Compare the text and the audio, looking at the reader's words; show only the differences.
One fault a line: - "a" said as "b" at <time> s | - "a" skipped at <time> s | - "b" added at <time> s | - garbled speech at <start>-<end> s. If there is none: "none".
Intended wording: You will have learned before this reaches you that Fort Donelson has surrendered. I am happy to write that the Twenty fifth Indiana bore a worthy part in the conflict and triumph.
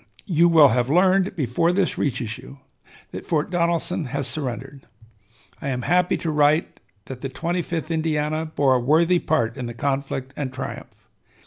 none